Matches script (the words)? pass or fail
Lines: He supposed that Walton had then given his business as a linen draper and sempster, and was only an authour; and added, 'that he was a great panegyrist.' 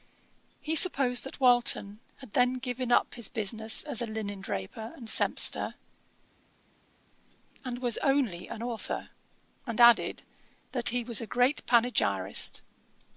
fail